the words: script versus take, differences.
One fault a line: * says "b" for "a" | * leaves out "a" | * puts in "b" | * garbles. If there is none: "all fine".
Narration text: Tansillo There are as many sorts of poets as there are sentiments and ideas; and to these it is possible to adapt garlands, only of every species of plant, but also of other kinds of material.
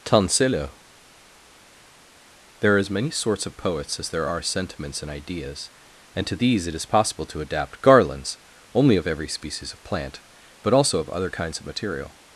all fine